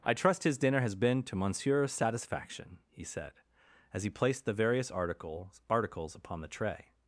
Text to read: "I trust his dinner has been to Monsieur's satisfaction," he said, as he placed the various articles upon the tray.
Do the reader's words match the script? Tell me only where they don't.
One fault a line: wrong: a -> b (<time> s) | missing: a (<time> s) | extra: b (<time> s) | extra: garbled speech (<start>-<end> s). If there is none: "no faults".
extra: articles (5.7 s)